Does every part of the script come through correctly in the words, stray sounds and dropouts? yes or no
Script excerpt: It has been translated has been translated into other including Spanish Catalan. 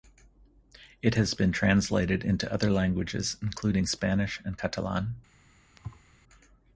no